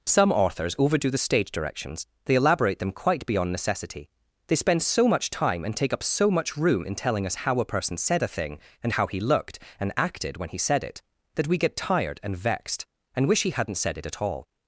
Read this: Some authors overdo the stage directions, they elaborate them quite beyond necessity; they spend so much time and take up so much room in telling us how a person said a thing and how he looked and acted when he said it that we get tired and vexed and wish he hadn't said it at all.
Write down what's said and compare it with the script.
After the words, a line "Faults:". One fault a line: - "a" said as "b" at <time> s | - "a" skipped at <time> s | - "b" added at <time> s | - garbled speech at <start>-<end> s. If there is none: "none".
Some authors overdo the stage directions, they elaborate them quite beyond necessity; they spend so much time and take up so much room in telling us how a person said a thing and how he looked and acted when he said it that we get tired and vexed and wish he hadn't said it at all.
Faults:
none